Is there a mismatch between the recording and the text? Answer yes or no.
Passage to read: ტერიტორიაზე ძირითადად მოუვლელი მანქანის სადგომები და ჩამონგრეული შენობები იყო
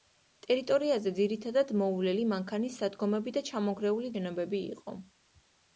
no